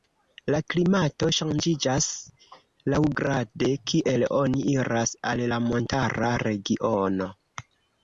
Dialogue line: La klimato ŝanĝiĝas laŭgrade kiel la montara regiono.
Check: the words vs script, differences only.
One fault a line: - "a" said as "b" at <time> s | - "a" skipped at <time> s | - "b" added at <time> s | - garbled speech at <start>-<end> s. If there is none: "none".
- "oni iras al" added at 4.4 s